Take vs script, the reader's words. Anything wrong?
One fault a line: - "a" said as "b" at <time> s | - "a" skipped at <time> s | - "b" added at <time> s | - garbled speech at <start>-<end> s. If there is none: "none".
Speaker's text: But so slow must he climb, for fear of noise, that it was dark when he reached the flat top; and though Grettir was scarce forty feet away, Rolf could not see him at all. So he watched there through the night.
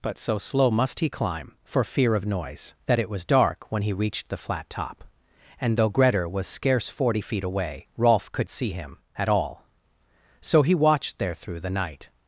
- "not" skipped at 8.5 s